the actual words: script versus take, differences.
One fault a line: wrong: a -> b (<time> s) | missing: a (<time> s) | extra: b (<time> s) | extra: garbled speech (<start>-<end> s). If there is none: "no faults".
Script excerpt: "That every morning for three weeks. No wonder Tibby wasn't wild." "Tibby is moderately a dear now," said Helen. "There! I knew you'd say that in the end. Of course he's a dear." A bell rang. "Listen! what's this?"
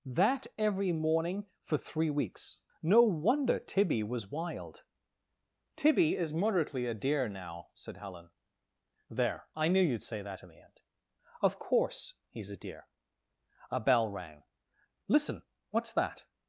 wrong: wasn't -> was (4.0 s)
wrong: this -> that (15.9 s)